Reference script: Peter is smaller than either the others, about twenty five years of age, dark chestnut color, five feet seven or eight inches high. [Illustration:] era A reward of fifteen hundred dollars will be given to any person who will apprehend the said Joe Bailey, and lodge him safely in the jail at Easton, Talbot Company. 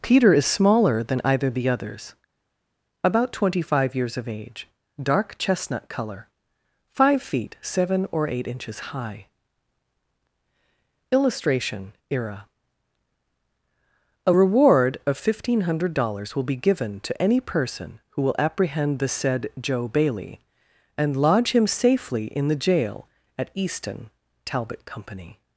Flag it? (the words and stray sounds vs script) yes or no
no